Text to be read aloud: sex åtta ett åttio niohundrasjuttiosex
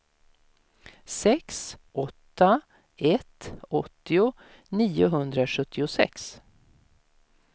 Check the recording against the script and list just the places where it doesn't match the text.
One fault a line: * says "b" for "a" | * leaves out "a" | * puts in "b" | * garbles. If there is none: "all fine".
all fine